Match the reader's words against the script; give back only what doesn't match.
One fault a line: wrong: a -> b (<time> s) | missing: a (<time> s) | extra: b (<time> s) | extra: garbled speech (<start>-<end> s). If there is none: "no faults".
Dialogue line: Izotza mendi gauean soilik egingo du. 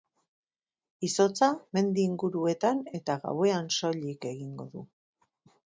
extra: inguruetan eta (2.1 s)